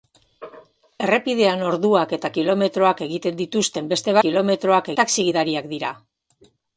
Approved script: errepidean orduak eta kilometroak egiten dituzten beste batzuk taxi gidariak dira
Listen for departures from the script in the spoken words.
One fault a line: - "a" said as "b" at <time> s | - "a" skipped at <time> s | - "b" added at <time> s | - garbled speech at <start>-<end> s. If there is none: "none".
- "batzuk" said as "kilometroak" at 4.2 s